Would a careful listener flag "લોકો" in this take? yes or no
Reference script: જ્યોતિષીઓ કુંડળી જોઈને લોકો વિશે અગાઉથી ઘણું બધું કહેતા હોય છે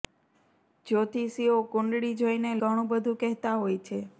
yes